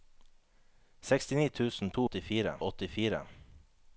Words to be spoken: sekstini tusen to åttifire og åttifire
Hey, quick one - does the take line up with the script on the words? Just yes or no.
yes